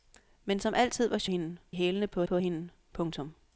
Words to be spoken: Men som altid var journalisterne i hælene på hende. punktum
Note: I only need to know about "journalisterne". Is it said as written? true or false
false